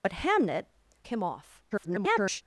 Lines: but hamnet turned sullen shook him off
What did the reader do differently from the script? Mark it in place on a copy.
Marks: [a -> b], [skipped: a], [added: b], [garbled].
but hamnet [skipped: turned sullen shook] him off [garbled]